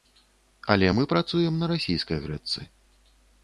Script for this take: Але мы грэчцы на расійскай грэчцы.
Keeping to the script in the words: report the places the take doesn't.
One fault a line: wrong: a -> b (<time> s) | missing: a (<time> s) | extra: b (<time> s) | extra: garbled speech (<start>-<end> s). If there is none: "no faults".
wrong: грэчцы -> працуем (1.2 s)